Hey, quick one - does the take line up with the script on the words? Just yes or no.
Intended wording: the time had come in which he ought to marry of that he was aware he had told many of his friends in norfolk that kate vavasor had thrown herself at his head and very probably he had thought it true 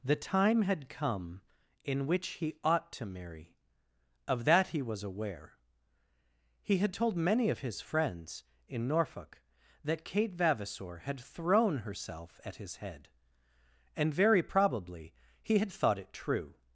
yes